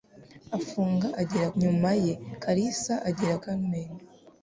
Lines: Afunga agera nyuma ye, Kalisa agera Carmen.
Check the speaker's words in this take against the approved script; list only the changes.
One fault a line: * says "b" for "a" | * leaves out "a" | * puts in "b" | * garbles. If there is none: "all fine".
all fine